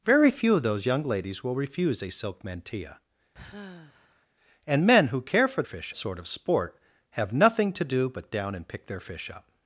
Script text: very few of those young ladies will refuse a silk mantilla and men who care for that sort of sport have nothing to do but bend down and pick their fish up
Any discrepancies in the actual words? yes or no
yes